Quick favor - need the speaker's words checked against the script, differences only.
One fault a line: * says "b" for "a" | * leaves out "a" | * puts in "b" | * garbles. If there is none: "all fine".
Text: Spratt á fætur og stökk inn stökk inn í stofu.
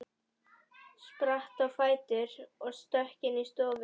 * leaves out "stökk inn"